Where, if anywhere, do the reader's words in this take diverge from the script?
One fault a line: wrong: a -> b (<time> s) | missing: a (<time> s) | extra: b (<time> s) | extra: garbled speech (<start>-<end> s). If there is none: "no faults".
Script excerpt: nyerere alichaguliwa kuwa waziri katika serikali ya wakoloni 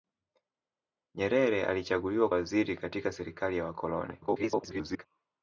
missing: kuwa (2.3 s)
extra: garbled speech (4.2-5.0 s)